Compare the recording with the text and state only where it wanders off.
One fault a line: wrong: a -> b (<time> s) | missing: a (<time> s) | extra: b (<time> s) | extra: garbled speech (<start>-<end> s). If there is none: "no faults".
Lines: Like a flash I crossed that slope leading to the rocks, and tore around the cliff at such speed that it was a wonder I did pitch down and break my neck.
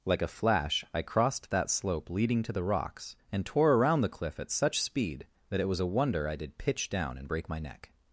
no faults